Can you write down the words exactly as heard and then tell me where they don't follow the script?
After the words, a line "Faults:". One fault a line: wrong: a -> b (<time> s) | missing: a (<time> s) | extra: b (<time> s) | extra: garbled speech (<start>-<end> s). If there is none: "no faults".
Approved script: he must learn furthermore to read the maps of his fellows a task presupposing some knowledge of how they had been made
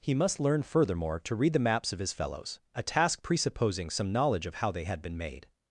he must learn furthermore to read the maps of his fellows a task presupposing some knowledge of how they had been made
Faults:
no faults